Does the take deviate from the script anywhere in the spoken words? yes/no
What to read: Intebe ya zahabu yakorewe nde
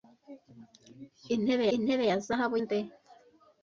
yes